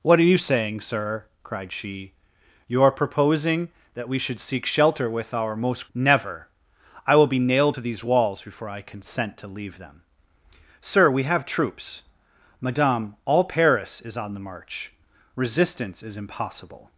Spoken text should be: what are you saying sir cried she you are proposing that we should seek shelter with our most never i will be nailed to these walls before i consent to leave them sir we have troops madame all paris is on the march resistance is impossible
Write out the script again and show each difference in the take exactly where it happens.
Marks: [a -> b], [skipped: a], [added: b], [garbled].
what are you saying sir cried she you are proposing that we should seek shelter with our most never i will be nailed to these walls before i consent to leave them sir we have troops madame all paris is on the march resistance is impossible